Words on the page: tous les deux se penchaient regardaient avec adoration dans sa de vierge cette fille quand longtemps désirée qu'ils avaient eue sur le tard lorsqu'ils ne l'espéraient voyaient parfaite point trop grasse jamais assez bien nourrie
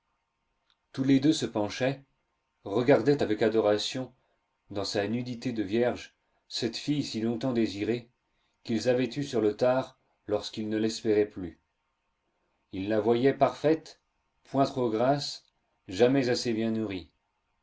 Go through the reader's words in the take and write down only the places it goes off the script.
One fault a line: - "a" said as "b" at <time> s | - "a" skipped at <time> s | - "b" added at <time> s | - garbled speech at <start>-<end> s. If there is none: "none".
- "nudité" added at 5.1 s
- "quand" said as "si" at 7.0 s
- "plus ils la" added at 11.3 s